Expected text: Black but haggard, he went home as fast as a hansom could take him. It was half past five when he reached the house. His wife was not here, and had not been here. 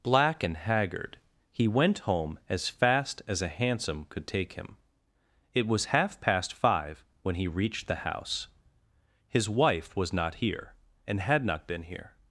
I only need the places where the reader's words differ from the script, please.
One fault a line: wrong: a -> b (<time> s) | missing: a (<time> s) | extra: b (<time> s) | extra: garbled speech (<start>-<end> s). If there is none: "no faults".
wrong: but -> and (0.4 s)